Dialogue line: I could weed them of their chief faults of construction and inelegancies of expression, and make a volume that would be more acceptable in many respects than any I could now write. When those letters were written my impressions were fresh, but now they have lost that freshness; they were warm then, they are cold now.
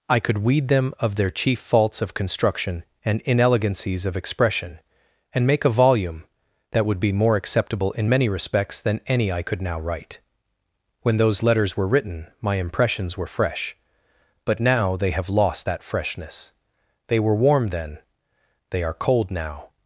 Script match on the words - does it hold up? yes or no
yes